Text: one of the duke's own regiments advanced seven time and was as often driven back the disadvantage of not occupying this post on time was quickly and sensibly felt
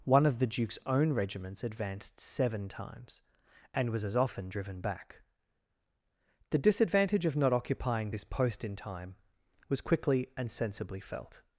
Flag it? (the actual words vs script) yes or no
yes